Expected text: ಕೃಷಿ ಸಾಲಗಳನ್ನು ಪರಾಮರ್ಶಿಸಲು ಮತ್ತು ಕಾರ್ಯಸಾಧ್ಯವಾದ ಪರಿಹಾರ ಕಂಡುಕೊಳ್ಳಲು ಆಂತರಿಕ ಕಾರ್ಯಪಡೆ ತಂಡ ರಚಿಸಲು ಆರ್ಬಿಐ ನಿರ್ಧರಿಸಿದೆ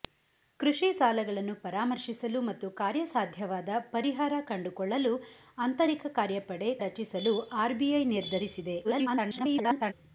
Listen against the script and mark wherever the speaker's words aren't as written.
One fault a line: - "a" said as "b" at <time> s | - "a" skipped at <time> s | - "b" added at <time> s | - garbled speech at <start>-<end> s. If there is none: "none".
- "ತಂಡ" skipped at 6.7 s
- garbled speech at 8.8-9.9 s